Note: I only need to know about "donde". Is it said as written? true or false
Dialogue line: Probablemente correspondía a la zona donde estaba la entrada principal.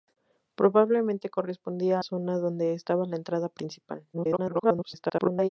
true